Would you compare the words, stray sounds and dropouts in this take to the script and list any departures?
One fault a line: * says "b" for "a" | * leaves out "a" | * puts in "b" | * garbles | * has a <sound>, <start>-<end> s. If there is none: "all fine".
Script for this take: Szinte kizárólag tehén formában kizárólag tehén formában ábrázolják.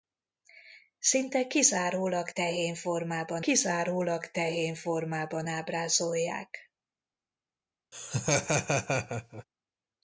* has a laugh, 7.9-9.4 s